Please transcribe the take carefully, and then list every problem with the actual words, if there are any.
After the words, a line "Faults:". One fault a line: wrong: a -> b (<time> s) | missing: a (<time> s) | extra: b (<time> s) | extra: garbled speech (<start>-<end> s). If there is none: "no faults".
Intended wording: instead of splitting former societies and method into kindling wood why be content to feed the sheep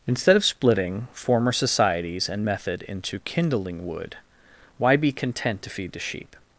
instead of splitting former societies and method into kindling wood why be content to feed the sheep
Faults:
no faults